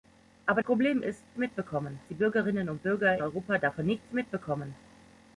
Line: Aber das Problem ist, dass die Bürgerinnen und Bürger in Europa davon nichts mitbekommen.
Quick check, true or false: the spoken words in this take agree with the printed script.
false